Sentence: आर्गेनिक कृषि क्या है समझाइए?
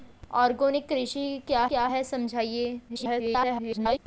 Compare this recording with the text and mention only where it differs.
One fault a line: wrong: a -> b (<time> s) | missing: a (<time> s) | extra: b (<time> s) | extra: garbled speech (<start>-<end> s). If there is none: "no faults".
extra: क्या (1.7 s)
extra: garbled speech (2.9-4.0 s)